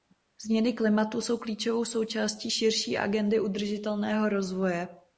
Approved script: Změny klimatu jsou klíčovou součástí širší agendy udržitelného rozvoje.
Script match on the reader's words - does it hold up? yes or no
yes